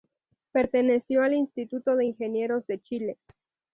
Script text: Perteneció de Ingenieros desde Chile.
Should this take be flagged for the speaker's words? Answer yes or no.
yes